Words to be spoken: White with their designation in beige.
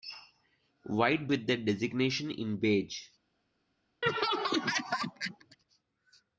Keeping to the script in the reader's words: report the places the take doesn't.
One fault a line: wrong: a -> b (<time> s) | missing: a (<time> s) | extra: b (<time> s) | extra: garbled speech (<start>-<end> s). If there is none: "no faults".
no faults